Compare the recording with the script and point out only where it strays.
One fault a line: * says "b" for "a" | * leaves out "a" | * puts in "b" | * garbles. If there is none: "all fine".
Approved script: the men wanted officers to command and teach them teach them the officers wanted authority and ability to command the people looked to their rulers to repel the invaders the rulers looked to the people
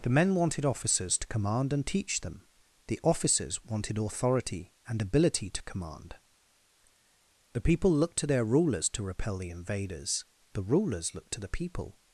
* leaves out "teach them"